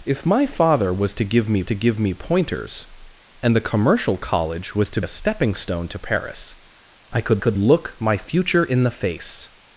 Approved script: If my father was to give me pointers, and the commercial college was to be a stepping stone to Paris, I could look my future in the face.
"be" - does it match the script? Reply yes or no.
no